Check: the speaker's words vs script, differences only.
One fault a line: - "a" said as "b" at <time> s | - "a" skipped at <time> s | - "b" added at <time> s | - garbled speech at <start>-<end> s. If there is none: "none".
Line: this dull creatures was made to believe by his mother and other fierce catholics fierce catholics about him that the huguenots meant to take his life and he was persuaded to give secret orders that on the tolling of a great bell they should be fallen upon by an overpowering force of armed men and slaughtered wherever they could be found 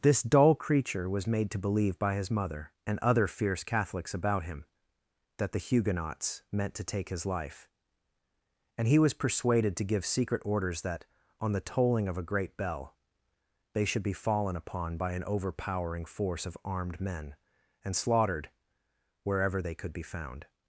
- "creatures" said as "creature" at 0.6 s
- "fierce catholics" skipped at 4.2 s